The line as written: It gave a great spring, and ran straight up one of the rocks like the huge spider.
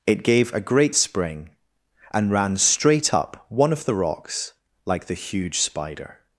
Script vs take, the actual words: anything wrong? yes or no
no